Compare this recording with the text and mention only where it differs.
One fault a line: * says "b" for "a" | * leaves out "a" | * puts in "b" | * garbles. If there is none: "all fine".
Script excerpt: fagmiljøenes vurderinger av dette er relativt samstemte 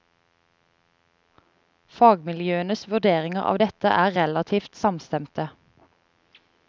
all fine